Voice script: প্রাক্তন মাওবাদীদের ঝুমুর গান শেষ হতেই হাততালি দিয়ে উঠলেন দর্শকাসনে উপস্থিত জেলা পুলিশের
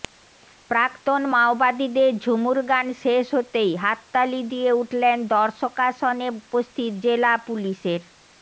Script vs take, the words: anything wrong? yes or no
no